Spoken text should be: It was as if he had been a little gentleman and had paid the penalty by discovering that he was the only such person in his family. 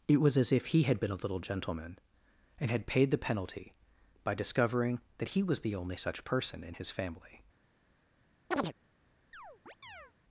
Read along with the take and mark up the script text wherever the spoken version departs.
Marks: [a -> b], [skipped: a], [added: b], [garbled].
It was as if he had been a little gentleman and had paid the penalty by discovering that he was the only such person in his family.